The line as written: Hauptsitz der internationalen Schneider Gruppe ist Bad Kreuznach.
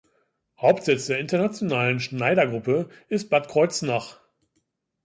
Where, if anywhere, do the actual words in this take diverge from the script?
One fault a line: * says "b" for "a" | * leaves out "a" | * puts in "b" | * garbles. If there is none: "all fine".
all fine